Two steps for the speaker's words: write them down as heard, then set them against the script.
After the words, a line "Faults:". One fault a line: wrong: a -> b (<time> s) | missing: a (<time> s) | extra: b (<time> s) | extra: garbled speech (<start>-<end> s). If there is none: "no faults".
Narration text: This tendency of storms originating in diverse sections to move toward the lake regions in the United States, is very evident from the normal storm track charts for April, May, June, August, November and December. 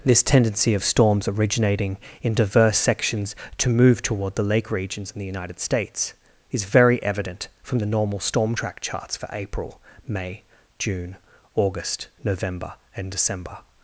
This tendency of storms originating in diverse sections to move toward the lake regions in the United States, is very evident from the normal storm track charts for April, May, June, August, November and December.
Faults:
no faults